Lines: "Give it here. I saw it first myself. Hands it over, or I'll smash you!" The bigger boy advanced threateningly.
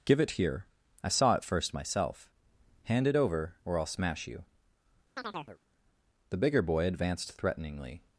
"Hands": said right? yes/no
no